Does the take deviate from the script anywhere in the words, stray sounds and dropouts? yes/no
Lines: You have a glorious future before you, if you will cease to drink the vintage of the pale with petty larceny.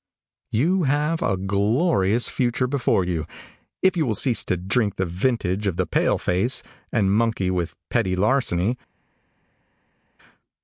yes